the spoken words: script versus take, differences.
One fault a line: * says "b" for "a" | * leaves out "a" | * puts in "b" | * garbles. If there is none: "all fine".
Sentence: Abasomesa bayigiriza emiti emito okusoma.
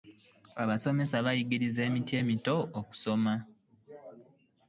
all fine